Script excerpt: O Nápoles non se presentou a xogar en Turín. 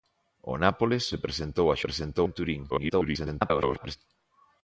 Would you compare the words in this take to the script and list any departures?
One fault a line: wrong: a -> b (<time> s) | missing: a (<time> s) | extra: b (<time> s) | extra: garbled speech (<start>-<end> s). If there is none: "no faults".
missing: non (1.0 s)
wrong: xogar -> presentou (1.9 s)
extra: garbled speech (2.7-4.0 s)